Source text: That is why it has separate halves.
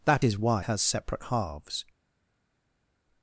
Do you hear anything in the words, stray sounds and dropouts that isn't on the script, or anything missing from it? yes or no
yes